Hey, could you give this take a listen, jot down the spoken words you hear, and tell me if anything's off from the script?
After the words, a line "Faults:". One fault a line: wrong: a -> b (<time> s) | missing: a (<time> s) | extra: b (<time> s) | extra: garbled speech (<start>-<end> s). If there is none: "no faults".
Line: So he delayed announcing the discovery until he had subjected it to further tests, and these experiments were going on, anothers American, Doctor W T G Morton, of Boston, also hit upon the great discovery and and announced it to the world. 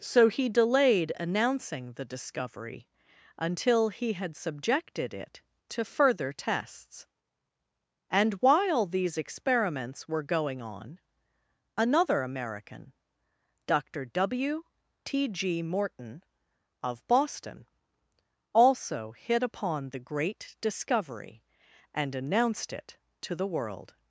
So he delayed announcing the discovery until he had subjected it to further tests, and while these experiments were going on, another American, Doctor W T G Morton, of Boston, also hit upon the great discovery and announced it to the world.
Faults:
extra: while (8.3 s)
wrong: anothers -> another (11.8 s)
missing: and (22.1 s)